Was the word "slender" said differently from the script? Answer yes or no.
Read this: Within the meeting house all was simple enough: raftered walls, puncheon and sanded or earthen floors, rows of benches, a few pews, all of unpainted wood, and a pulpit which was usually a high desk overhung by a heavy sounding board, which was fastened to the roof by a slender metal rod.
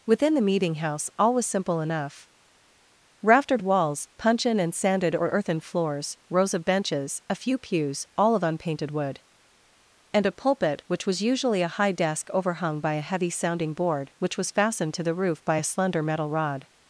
no